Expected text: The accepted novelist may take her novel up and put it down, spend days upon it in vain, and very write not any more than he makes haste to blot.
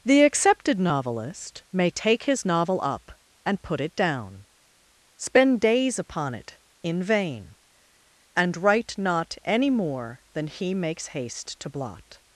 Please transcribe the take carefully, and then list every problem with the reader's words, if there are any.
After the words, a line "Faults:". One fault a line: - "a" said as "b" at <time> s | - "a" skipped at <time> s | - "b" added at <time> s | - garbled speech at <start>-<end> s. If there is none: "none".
The accepted novelist may take his novel up and put it down, spend days upon it in vain, and write not any more than he makes haste to blot.
Faults:
- "her" said as "his" at 2.2 s
- "very" skipped at 8.6 s